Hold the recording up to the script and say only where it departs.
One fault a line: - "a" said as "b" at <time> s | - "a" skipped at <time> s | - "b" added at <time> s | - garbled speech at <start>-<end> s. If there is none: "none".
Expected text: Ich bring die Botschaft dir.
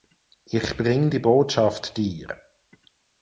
none